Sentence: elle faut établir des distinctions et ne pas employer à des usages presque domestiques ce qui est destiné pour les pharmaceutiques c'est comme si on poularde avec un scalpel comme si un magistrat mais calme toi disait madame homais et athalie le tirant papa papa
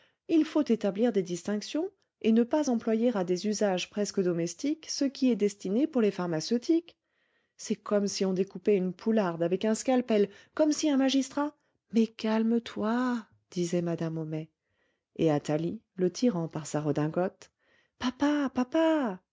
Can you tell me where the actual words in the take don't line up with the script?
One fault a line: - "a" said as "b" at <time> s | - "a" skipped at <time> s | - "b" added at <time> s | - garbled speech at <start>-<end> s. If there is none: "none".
- "elle" said as "il" at 0.3 s
- "découpait une" added at 8.3 s
- "par sa redingote" added at 16.5 s